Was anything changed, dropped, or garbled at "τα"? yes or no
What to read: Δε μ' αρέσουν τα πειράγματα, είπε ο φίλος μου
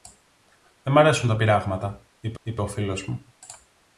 no